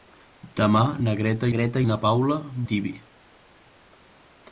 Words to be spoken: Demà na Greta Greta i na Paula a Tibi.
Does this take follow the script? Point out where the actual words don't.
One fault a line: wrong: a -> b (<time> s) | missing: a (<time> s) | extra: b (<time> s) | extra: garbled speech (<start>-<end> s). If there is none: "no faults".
no faults